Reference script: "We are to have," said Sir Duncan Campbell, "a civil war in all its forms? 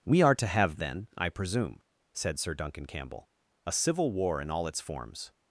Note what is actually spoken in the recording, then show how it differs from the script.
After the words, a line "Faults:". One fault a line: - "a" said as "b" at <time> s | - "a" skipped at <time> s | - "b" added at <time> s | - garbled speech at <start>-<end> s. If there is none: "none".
"We are to have, then, I presume," said Sir Duncan Campbell, "a civil war in all its forms?
Faults:
- "then I presume" added at 0.8 s